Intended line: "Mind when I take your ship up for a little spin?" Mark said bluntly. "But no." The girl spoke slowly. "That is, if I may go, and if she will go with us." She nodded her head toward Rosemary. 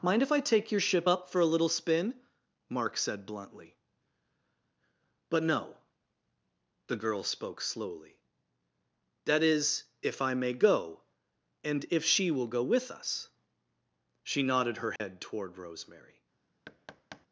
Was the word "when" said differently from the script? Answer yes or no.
yes